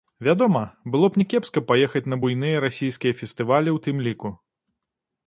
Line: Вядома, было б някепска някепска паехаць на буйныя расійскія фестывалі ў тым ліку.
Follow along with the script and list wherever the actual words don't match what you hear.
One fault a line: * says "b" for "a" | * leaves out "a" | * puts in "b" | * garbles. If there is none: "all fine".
* leaves out "някепска"